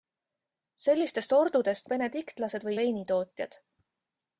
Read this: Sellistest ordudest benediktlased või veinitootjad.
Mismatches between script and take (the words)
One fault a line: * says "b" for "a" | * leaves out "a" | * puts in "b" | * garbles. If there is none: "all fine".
all fine